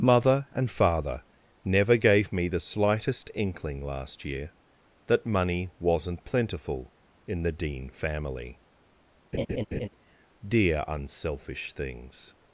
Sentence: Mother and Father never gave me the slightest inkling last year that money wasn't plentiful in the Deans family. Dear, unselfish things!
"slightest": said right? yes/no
yes